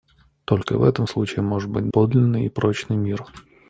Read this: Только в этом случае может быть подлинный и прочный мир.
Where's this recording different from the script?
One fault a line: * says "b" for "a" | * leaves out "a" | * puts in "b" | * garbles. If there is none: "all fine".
all fine